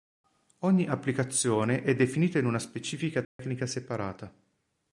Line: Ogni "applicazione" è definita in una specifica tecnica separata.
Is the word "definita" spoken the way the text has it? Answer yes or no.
yes